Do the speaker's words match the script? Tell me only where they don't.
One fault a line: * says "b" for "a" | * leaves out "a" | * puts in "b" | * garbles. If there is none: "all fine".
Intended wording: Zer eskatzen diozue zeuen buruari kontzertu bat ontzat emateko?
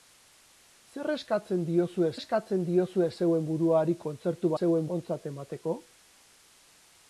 * puts in "eskatzen diozue"
* says "zeuen" for "bat"